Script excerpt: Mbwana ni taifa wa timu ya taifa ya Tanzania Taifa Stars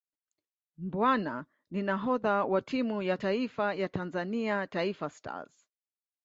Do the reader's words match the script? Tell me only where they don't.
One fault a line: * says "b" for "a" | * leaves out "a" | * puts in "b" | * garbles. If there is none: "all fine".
* says "nahodha" for "taifa"